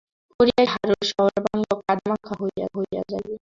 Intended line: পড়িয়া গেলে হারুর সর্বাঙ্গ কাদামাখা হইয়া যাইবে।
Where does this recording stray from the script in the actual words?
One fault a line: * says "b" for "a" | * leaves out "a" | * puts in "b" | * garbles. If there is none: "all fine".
* leaves out "গেলে"
* puts in "হইয়া"